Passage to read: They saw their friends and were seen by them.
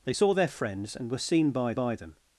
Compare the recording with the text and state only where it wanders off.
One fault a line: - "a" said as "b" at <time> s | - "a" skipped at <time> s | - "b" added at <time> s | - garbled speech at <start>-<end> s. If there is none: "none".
- "by" added at 1.7 s